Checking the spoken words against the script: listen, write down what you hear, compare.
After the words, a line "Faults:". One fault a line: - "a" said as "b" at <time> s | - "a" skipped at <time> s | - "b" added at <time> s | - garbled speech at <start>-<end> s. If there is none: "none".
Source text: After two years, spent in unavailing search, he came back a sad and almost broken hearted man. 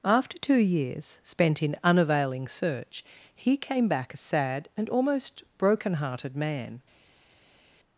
After two years, spent in unavailing search, he came back a sad and almost broken hearted man.
Faults:
none